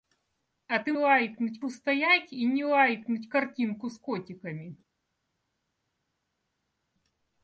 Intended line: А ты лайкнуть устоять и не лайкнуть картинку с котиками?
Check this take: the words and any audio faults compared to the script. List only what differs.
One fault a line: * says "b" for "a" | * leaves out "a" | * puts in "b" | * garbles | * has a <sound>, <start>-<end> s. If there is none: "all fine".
all fine